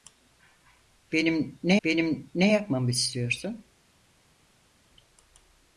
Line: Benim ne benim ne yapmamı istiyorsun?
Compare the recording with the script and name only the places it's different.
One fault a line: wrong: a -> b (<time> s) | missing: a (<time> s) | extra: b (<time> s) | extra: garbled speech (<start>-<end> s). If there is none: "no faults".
no faults